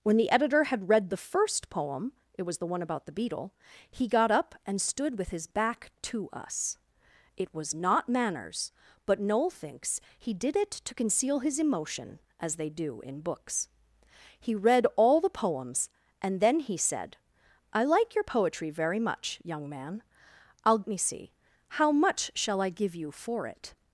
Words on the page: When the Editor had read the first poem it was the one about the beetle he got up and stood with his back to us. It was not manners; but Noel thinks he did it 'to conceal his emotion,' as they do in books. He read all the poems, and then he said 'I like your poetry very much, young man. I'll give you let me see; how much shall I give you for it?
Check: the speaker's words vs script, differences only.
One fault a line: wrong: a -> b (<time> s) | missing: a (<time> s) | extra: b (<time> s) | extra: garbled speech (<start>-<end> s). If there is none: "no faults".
missing: give you let (20.8 s)